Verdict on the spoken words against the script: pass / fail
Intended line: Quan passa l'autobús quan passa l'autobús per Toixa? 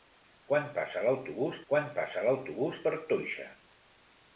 pass